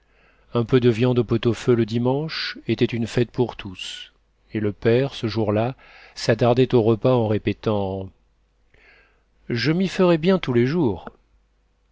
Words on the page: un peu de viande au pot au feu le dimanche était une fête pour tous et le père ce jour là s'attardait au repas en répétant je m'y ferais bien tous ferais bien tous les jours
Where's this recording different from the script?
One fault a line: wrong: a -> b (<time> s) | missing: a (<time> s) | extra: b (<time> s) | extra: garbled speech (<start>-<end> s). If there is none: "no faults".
missing: ferais bien tous (10.5 s)